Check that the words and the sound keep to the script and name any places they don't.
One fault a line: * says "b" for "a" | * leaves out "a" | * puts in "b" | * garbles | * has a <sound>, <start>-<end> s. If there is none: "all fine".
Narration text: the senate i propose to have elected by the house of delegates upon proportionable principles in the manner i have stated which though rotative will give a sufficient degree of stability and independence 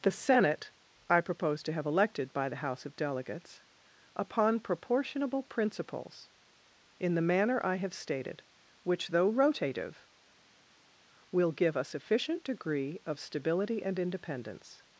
all fine